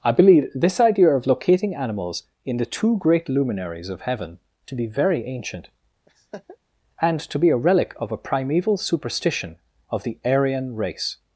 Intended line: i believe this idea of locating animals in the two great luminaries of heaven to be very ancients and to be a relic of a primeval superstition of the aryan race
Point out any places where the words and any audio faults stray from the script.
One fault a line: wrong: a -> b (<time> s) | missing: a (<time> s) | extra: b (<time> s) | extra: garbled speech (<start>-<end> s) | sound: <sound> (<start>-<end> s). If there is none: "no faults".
wrong: ancients -> ancient (5.3 s)
sound: laugh (6.1-6.6 s)